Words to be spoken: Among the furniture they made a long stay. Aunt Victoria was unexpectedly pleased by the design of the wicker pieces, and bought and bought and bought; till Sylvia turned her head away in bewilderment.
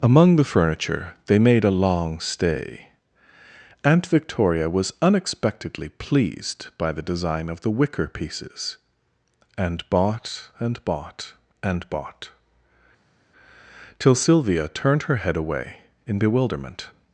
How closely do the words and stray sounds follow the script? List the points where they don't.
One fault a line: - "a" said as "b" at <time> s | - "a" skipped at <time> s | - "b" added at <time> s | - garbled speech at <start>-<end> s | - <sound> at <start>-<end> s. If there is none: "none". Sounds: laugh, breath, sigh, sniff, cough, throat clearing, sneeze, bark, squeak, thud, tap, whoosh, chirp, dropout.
none